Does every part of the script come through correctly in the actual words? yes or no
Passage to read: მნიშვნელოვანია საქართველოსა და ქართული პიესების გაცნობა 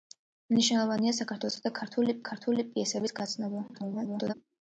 no